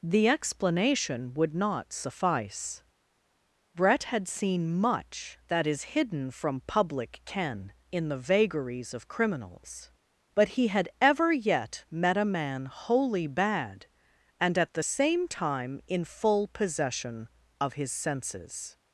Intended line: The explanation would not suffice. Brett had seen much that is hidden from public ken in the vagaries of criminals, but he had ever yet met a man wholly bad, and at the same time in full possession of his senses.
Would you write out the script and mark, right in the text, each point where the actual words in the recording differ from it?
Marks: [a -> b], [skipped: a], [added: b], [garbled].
The explanation would not suffice. Brett had seen much that is hidden from public ken in the vagaries of criminals, but he had ever yet met a man wholly bad, and at the same time in full possession of his senses.